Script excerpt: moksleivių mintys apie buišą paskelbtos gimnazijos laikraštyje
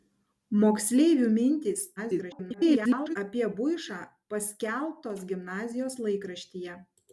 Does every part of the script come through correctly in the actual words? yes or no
no